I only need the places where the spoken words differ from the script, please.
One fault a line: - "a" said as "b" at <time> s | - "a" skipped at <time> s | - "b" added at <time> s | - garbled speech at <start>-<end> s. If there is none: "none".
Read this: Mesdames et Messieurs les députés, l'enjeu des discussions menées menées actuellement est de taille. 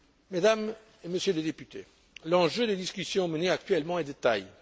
- "menées" skipped at 3.5 s